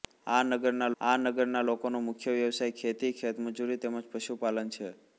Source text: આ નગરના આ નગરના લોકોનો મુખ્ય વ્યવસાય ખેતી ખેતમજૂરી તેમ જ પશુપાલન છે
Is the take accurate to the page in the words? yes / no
yes